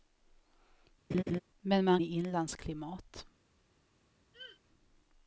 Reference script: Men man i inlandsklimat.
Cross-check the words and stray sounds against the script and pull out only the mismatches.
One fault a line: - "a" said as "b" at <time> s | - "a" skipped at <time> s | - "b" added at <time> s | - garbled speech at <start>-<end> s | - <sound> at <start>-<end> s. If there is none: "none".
- laugh at 1.1-1.4 s
- throat clearing at 4.3-4.6 s